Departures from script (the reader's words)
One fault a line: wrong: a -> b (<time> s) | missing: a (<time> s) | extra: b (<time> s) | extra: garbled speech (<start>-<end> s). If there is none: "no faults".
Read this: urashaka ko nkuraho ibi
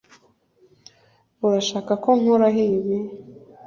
no faults